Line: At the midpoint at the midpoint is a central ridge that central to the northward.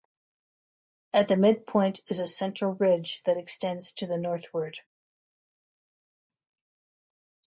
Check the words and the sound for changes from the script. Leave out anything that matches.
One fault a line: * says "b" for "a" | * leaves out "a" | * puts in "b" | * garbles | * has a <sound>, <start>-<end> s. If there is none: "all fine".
* leaves out "at the midpoint"
* says "extends" for "central"